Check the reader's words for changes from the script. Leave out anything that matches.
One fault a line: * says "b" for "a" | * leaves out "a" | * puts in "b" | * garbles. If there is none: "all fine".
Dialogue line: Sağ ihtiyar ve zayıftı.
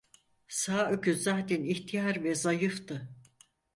* puts in "öküz zaten"